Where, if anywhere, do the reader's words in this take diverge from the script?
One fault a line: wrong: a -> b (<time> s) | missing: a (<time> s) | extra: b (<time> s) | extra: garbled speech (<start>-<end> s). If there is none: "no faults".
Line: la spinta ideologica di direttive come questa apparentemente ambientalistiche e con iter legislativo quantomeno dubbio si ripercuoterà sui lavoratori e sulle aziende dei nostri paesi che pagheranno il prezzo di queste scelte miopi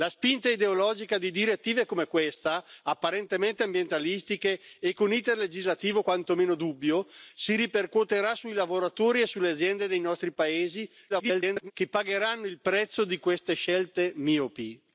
extra: garbled speech (11.1-11.7 s)